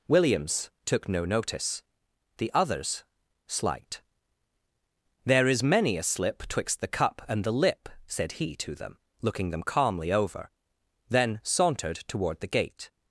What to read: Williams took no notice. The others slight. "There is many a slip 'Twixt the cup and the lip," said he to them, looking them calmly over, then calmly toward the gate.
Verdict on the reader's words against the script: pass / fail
fail